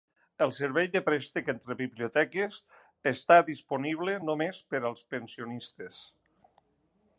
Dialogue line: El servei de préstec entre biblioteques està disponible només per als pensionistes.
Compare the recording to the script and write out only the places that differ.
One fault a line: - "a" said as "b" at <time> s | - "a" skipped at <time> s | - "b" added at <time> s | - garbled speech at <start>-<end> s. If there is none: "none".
none